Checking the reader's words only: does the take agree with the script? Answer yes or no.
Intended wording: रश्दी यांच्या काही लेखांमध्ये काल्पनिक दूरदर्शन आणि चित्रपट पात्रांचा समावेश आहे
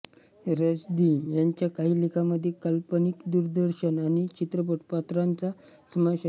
yes